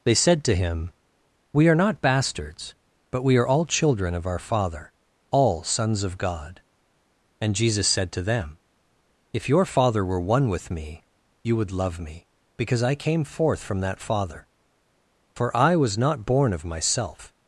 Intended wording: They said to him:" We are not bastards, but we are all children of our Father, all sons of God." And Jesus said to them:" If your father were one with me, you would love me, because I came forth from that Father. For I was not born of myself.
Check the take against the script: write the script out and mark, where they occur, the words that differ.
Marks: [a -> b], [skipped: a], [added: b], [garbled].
They said to him:" We are not bastards, but we are all children of our Father, all sons of God." And Jesus said to them:" If your father were one with me, you would love me, because I came forth from that Father. For I was not born of myself.